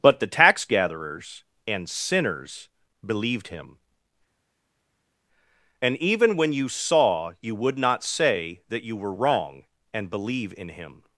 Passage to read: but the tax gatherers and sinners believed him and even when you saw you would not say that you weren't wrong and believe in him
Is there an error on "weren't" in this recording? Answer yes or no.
yes